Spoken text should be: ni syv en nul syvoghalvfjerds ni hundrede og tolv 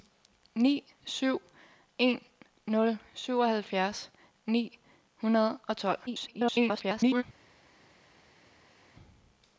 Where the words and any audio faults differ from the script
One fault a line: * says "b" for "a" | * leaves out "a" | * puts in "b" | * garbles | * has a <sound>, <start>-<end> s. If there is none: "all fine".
* garbles